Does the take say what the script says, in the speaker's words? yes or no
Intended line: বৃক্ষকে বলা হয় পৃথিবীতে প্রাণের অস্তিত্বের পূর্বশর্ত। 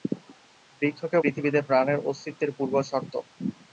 no